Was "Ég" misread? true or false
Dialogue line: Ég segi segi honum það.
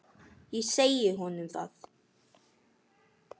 false